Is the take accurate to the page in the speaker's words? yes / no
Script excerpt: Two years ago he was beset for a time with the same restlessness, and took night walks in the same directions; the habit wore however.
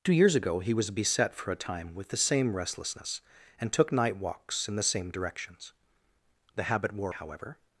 yes